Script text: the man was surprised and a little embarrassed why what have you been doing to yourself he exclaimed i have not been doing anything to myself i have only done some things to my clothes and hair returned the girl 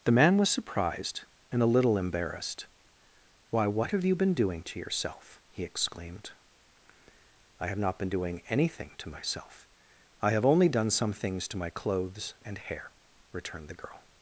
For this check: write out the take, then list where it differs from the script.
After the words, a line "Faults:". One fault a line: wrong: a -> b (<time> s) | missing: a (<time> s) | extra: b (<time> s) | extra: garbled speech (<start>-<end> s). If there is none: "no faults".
the man was surprised and a little embarrassed why what have you been doing to yourself he exclaimed i have not been doing anything to myself i have only done some things to my clothes and hair returned the girl
Faults:
no faults